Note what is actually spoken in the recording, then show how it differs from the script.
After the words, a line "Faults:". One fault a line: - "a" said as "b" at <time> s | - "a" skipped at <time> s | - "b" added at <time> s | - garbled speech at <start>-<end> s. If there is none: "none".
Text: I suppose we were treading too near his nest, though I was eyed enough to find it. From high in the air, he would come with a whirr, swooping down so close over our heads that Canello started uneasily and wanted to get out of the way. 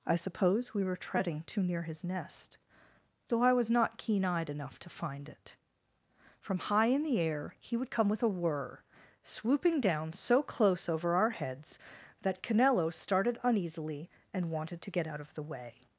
I suppose we were treading too near his nest, though I was not keen eyed enough to find it. From high in the air, he would come with a whirr, swooping down so close over our heads that Canello started uneasily and wanted to get out of the way.
Faults:
- "not keen" added at 3.7 s